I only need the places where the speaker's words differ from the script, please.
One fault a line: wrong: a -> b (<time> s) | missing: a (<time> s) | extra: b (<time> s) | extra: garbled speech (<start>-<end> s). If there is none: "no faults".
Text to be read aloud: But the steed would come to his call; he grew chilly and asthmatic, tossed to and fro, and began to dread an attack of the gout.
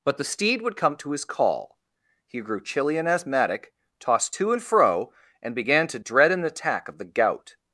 no faults